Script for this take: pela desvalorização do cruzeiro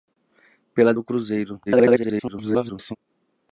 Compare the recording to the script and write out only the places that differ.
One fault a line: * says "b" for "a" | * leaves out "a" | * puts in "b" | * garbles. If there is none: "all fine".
* leaves out "desvalorização"
* garbles